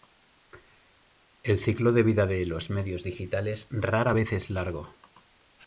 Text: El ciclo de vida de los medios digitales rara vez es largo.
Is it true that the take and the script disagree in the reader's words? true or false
false